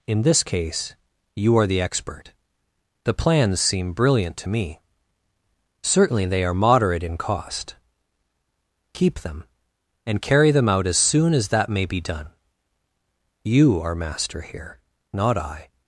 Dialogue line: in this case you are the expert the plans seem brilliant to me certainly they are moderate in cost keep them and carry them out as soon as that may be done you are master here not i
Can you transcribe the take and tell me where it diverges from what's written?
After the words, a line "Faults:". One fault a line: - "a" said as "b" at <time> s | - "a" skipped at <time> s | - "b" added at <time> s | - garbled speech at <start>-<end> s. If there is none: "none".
in this case you are the expert the plans seem brilliant to me certainly they are moderate in cost keep them and carry them out as soon as that may be done you are master here not i
Faults:
none